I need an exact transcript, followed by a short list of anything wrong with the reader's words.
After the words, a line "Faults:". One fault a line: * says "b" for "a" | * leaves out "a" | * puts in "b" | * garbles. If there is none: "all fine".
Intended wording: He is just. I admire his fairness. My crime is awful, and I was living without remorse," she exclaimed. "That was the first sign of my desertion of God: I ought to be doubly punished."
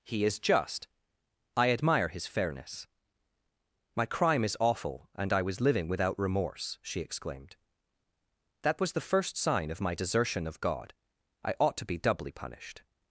He is just. I admire his fairness. My crime is awful, and I was living without remorse," she exclaimed. "That was the first sign of my desertion of God: I ought to be doubly punished."
Faults:
all fine